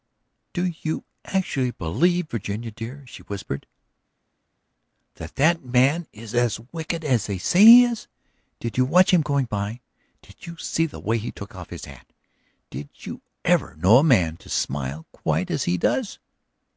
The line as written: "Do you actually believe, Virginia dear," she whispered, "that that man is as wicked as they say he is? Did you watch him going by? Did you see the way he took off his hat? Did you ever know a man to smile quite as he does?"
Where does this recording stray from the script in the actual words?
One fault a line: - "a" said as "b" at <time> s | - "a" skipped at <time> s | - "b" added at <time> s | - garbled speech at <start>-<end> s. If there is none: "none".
none